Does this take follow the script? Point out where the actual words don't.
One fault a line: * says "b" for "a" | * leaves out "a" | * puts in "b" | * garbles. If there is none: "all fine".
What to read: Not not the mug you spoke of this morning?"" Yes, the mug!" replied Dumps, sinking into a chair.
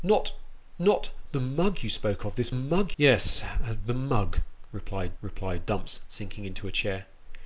* says "mug" for "morning"
* puts in "replied"